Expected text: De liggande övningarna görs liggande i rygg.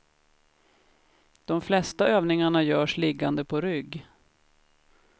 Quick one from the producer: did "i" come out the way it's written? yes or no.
no